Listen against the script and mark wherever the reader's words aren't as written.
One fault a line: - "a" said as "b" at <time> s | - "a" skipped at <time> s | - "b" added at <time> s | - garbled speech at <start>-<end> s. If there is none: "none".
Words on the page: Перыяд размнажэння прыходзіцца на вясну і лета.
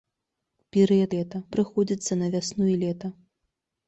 - "размнажэння" said as "лета" at 1.2 s